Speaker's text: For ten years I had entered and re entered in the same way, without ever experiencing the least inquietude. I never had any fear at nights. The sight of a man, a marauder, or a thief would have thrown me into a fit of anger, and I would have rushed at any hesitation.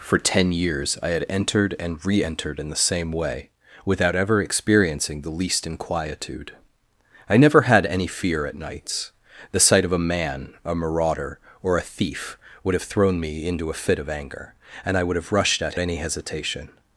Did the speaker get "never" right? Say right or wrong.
right